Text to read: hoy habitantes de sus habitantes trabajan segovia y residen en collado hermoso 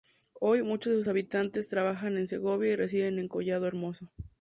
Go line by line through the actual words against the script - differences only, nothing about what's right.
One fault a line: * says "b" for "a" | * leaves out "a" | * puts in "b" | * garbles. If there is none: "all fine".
* says "muchos" for "habitantes"
* puts in "en"